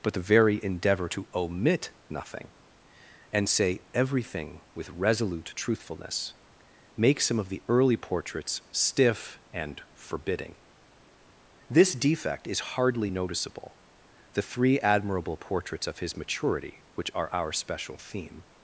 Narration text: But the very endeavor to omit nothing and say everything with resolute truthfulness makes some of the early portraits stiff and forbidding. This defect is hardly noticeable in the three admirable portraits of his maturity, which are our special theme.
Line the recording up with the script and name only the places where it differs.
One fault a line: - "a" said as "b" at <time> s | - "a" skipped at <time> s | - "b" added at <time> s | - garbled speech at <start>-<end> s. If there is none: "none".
- "in" skipped at 13.8 s